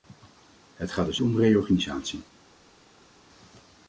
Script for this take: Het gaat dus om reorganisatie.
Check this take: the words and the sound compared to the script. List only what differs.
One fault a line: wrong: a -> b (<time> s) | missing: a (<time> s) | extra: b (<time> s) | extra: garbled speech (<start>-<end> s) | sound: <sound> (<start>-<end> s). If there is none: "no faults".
no faults